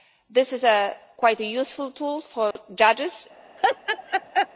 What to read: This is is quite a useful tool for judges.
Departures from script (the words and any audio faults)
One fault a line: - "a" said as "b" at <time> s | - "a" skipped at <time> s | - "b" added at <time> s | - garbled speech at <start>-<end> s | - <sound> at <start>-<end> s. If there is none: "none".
- "is" skipped at 0.7 s
- dropout at 2.5-2.6 s
- laugh at 3.6-4.5 s